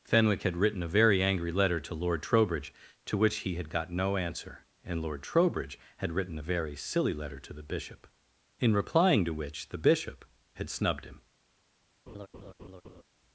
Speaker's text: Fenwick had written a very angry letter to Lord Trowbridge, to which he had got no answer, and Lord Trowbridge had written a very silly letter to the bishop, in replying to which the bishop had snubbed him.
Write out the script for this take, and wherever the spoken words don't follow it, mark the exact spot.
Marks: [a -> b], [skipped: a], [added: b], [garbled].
Fenwick had written a very angry letter to Lord Trowbridge, to which he had got no answer, and Lord Trowbridge had written a very silly letter to the bishop, in replying to which the bishop had snubbed him.